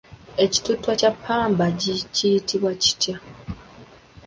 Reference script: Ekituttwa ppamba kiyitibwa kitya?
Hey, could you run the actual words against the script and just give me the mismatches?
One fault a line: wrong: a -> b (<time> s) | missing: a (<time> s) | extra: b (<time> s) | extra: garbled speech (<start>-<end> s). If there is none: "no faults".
extra: kya (1.0 s)